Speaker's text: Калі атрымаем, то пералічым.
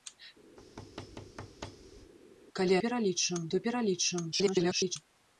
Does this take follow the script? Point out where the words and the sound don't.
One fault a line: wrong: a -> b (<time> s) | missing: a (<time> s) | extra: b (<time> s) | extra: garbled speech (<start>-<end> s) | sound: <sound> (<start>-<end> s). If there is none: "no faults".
sound: thud (0.6-2.1 s)
wrong: атрымаем -> пералічым (2.8 s)
extra: garbled speech (4.3-5.0 s)